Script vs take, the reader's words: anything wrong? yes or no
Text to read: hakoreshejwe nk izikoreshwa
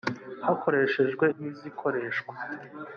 no